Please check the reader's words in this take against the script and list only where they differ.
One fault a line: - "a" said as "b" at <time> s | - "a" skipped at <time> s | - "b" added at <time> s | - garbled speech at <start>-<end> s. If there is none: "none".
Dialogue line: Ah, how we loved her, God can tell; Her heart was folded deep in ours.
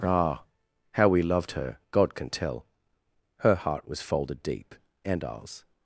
- "in" said as "and" at 5.0 s